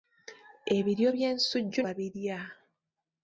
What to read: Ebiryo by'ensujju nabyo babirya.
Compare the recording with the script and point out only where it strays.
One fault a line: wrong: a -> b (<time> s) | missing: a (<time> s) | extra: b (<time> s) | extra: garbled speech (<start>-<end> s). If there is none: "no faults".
missing: nabyo (1.8 s)